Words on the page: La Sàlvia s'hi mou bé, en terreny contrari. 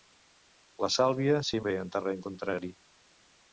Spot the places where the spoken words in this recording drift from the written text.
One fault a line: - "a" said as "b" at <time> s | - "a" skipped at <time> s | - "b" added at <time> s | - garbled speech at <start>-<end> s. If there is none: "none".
- "mou" skipped at 1.6 s